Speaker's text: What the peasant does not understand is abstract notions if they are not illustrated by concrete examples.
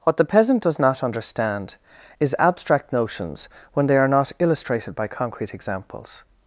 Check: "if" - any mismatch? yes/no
yes